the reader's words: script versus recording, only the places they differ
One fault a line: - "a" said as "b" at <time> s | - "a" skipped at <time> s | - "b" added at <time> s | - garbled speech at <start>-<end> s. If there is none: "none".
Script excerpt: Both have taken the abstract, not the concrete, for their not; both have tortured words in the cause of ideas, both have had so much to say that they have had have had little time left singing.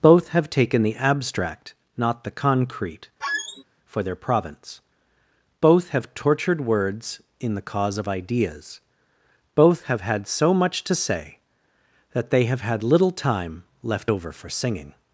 - "not" said as "province" at 4.2 s
- "have had" skipped at 12.8 s
- "over for" added at 14.1 s